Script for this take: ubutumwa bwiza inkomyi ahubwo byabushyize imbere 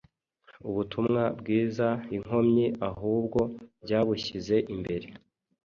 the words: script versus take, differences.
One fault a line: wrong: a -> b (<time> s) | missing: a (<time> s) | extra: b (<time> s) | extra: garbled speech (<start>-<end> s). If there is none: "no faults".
no faults